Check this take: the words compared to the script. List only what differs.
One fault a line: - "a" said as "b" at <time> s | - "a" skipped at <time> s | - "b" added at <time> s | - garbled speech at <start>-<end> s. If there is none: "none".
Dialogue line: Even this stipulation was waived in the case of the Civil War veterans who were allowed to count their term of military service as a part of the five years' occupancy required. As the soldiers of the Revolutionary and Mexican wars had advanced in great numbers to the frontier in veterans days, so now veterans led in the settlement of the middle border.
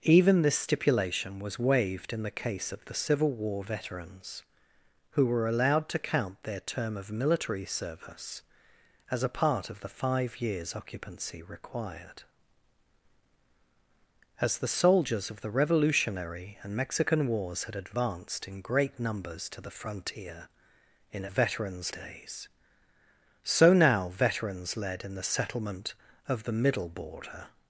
none